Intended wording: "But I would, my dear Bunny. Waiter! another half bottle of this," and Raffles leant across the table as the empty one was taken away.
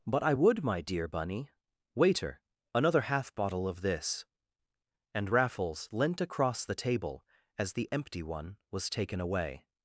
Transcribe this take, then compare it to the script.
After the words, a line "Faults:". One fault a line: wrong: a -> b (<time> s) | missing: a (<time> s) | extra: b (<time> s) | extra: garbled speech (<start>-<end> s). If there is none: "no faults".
"But I would, my dear Bunny. Waiter! another half bottle of this," and Raffles leant across the table as the empty one was taken away.
Faults:
no faults